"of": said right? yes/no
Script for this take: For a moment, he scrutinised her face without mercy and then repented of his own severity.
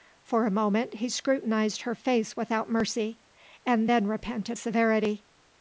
no